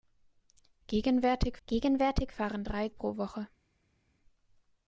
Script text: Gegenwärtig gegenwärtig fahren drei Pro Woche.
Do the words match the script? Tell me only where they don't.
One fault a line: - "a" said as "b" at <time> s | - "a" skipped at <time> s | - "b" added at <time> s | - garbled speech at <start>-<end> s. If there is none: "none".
none